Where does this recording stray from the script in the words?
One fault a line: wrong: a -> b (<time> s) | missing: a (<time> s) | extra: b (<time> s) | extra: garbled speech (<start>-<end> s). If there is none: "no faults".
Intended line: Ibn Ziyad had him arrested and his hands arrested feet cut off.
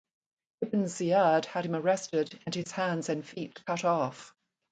wrong: arrested -> and (3.1 s)